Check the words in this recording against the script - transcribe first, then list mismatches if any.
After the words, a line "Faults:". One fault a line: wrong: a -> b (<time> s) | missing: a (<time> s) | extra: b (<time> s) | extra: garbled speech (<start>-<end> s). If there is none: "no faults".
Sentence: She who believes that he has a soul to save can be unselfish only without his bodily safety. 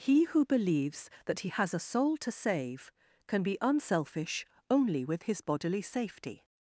He who believes that he has a soul to save can be unselfish only with his bodily safety.
Faults:
wrong: She -> He (0.0 s)
wrong: without -> with (5.0 s)